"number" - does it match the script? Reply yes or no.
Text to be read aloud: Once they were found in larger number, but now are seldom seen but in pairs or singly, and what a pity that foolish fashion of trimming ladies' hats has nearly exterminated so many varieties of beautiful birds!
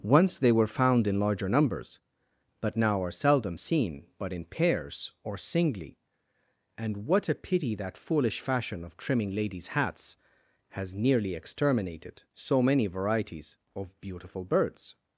no